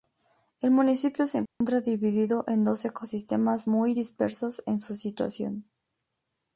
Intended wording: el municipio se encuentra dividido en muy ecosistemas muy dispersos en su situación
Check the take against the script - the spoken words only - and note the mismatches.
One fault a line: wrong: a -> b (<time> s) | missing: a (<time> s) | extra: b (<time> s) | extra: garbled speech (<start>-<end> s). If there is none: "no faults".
wrong: muy -> dos (2.6 s)